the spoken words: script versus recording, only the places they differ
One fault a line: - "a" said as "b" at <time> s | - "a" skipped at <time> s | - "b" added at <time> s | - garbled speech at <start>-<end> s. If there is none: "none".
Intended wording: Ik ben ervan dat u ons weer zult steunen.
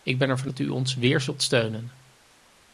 none